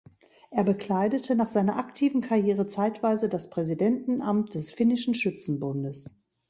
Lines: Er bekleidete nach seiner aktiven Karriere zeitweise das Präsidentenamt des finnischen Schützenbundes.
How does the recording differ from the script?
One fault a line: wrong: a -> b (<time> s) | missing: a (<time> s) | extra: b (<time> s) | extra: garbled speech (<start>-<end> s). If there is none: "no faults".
no faults